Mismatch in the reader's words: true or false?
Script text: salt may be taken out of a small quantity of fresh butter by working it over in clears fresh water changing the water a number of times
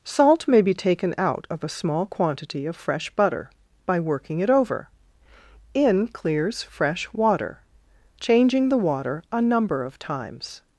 false